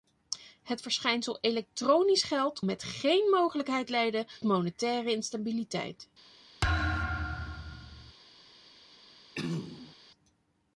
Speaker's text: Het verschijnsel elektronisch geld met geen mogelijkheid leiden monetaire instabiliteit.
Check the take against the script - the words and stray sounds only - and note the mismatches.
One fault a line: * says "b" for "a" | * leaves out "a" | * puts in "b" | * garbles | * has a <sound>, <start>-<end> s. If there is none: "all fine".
* has a thud, 6.6-8.1 s
* has a throat clearing, 9.3-10.0 s